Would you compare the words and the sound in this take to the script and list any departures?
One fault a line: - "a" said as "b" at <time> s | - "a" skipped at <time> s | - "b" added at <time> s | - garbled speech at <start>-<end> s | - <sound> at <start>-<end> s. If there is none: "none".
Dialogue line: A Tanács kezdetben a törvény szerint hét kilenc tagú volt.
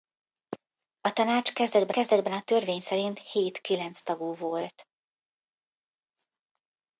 - "kezdetben" added at 1.9 s